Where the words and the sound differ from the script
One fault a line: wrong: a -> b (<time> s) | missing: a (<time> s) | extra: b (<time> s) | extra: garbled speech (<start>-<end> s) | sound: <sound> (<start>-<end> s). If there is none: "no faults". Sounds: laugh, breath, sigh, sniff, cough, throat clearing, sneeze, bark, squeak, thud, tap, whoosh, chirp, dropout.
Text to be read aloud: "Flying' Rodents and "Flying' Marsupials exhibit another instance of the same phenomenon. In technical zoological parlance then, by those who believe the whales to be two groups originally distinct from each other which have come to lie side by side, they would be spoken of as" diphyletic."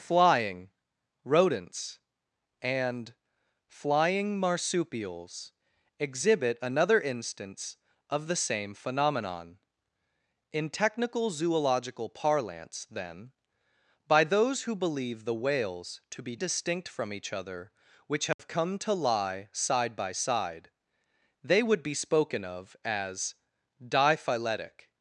missing: two groups originally (16.4 s)
sound: dropout (18.3-18.4 s)